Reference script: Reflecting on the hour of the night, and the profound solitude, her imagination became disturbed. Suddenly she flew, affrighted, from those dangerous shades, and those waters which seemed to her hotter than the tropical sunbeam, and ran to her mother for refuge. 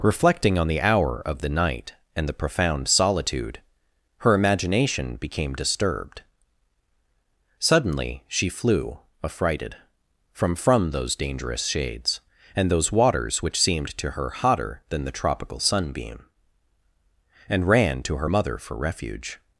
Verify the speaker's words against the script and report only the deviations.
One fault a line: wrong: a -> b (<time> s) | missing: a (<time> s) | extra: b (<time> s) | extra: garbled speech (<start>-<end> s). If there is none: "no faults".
extra: from (10.6 s)